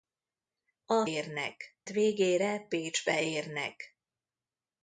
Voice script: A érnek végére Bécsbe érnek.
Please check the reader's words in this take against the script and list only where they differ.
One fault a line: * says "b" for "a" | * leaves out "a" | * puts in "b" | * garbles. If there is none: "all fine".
all fine